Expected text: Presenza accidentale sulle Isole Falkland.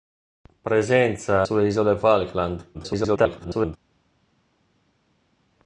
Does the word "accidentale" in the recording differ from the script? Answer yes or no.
yes